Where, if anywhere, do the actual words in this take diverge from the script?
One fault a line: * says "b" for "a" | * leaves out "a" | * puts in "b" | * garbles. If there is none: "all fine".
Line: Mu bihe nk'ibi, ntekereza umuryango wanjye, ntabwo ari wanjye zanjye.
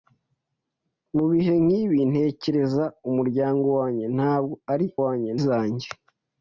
all fine